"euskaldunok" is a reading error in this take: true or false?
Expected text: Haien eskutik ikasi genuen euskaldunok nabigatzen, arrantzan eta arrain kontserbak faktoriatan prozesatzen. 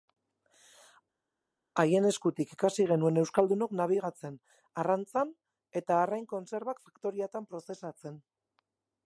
false